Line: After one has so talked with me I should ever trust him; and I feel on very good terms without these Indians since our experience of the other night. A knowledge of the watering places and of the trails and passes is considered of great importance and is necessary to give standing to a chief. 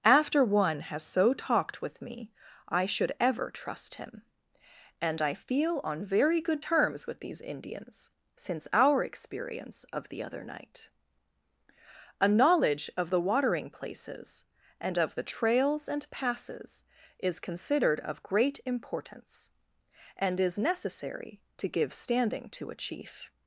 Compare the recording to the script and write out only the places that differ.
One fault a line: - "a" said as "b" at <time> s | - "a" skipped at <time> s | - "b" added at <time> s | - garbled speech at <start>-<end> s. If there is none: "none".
- "without" said as "with" at 7.0 s